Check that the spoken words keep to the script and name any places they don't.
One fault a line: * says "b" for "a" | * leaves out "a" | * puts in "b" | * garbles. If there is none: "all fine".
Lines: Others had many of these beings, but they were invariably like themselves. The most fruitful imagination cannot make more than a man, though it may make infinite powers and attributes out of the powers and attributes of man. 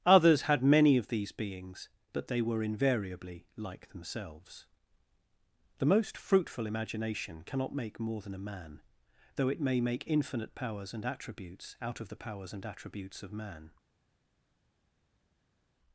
all fine